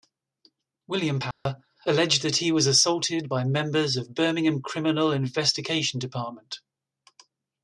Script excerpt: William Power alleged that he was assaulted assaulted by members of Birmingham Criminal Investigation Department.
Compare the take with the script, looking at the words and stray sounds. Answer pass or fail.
fail